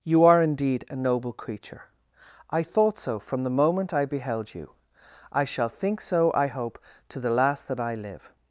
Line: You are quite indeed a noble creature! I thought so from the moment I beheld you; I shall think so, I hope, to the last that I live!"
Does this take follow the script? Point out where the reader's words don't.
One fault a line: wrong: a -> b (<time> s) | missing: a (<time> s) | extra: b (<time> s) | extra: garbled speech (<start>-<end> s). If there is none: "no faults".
missing: quite (0.4 s)